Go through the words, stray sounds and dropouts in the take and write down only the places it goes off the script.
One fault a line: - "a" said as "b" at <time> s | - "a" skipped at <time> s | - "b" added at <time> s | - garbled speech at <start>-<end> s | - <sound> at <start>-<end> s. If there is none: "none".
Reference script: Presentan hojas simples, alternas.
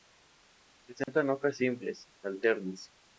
- dropout at 1.0-1.1 s